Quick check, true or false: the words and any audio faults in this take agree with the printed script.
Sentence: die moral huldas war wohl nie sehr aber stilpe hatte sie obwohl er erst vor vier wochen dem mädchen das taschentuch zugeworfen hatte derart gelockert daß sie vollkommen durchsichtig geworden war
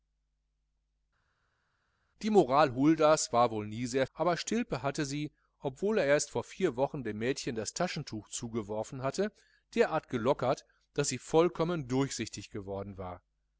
true